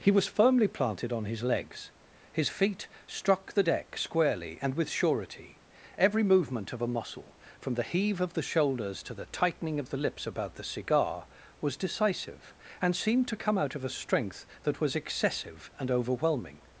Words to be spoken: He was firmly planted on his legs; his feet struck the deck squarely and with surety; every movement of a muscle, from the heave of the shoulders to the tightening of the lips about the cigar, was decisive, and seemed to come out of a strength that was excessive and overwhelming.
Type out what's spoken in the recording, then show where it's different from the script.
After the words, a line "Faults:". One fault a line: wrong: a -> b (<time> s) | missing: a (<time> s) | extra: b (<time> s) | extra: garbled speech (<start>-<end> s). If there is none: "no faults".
He was firmly planted on his legs; his feet struck the deck squarely and with surety; every movement of a muscle, from the heave of the shoulders to the tightening of the lips about the cigar, was decisive, and seemed to come out of a strength that was excessive and overwhelming.
Faults:
no faults